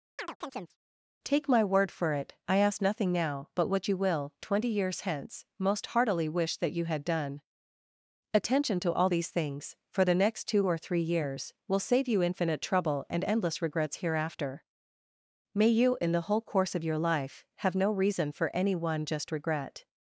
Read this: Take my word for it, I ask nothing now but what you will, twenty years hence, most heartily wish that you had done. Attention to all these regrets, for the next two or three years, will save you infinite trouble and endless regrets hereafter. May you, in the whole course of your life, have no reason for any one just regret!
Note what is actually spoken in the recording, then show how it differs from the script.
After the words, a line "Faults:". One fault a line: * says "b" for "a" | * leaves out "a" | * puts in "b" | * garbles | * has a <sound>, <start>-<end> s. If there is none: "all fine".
Take my word for it, I ask nothing now but what you will, twenty years hence, most heartily wish that you had done. Attention to all these things, for the next two or three years, will save you infinite trouble and endless regrets hereafter. May you, in the whole course of your life, have no reason for any one just regret!
Faults:
* has a chirp, 0.2-0.8 s
* says "things" for "regrets"